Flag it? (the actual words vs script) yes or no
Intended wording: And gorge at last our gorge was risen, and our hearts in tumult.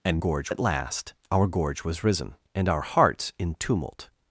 no